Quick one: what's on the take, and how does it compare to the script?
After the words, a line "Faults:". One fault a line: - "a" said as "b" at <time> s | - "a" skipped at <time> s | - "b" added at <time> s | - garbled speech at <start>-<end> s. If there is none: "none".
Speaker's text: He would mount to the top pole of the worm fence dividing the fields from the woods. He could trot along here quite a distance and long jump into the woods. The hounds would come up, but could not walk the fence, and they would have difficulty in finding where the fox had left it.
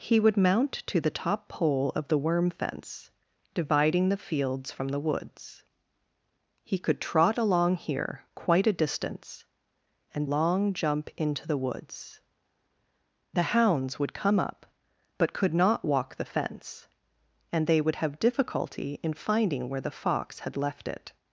He would mount to the top pole of the worm fence dividing the fields from the woods. He could trot along here quite a distance and long jump into the woods. The hounds would come up, but could not walk the fence, and they would have difficulty in finding where the fox had left it.
Faults:
none